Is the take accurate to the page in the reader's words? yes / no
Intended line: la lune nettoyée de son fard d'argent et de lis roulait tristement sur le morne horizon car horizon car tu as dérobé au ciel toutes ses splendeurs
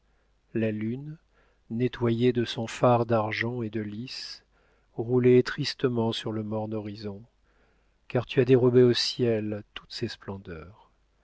no